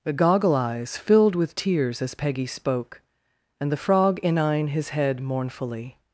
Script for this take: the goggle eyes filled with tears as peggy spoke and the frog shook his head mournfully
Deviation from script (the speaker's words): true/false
true